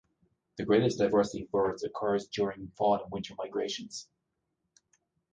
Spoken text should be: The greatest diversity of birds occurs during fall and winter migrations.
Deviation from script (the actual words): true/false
false